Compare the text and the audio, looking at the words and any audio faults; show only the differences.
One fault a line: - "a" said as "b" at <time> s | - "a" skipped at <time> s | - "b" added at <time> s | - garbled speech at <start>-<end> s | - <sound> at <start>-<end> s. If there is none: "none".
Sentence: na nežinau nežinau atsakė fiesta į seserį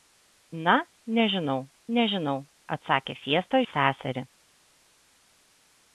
none